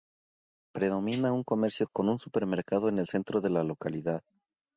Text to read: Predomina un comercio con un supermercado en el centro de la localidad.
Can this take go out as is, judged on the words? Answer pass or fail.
pass